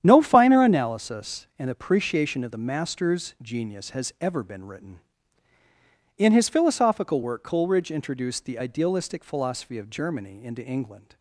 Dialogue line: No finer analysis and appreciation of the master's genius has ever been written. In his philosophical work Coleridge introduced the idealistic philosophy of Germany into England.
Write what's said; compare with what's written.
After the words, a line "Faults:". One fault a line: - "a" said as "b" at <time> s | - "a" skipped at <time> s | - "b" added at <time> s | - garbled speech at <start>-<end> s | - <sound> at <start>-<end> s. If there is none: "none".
No finer analysis and appreciation of the master's genius has ever been written. In his philosophical work Coleridge introduced the idealistic philosophy of Germany into England.
Faults:
none